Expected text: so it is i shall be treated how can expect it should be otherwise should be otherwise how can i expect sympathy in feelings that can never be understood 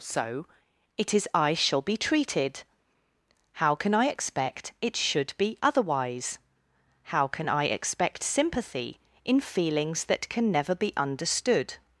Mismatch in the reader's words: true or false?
true